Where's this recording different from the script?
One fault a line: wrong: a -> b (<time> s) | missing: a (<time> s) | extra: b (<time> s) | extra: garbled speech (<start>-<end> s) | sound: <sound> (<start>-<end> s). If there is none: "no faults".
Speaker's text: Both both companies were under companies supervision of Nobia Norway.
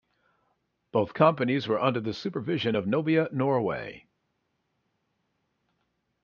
missing: both (1.1 s)
wrong: companies -> the (2.0 s)